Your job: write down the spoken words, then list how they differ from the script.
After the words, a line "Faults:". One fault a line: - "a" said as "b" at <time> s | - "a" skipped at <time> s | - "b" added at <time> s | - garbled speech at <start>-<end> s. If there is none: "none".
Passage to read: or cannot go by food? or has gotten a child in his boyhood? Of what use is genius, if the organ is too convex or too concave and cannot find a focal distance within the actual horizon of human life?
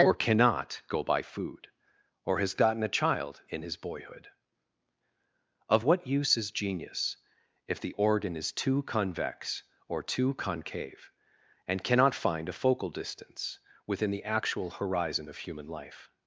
or cannot go by food? or has gotten a child in his boyhood? Of what use is genius, if the organ is too convex or too concave and cannot find a focal distance within the actual horizon of human life?
Faults:
none